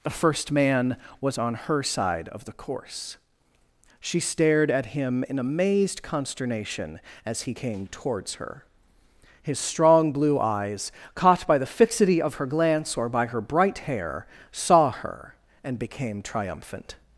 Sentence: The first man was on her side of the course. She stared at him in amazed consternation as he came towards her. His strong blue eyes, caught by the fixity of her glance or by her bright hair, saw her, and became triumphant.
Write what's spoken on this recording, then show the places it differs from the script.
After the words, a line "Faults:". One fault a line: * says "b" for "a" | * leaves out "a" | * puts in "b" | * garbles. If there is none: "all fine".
The first man was on her side of the course. She stared at him in amazed consternation as he came towards her. His strong blue eyes, caught by the fixity of her glance or by her bright hair, saw her, and became triumphant.
Faults:
all fine